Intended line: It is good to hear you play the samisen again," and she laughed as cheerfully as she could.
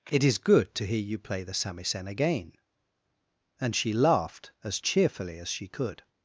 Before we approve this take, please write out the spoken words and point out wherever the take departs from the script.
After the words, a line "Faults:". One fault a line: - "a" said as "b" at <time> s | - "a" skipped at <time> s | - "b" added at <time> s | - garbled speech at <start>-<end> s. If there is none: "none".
It is good to hear you play the samisen again," and she laughed as cheerfully as she could.
Faults:
none